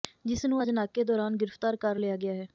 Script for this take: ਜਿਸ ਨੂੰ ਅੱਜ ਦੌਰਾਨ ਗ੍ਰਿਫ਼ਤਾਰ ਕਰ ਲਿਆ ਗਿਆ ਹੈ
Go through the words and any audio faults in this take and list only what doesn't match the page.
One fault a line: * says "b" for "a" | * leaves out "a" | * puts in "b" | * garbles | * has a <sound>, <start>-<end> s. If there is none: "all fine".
* puts in "ਨਾਕੇ"